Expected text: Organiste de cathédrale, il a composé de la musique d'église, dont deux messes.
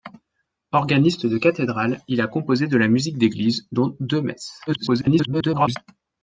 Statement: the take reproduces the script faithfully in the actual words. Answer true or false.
false